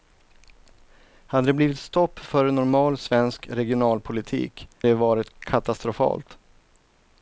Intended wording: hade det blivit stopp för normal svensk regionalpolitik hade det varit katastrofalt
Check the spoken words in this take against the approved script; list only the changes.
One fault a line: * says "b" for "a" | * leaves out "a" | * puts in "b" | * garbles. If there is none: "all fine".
* leaves out "hade"